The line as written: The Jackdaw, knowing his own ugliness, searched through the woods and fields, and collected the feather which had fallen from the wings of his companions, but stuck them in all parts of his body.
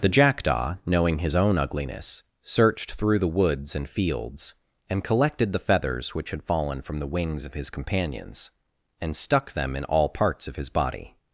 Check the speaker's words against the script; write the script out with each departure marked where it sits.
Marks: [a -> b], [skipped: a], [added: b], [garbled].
The Jackdaw, knowing his own ugliness, searched through the woods and fields, and collected the [feather -> feathers] which had fallen from the wings of his companions, [but -> and] stuck them in all parts of his body.